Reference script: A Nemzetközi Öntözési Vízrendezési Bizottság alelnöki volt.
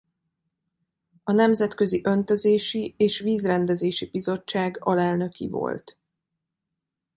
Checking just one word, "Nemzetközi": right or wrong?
right